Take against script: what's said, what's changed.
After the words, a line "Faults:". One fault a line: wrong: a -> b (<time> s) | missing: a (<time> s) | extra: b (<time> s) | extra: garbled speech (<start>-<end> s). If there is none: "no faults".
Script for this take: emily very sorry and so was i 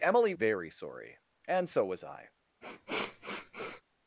emily very sorry and so was i
Faults:
no faults